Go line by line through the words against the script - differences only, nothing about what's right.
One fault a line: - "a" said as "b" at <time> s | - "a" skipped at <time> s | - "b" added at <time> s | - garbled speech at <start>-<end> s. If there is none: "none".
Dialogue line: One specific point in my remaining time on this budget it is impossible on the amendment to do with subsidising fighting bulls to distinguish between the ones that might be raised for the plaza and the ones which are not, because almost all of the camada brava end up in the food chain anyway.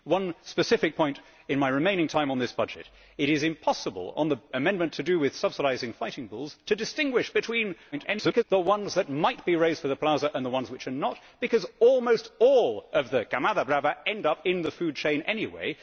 - garbled speech at 7.9-8.4 s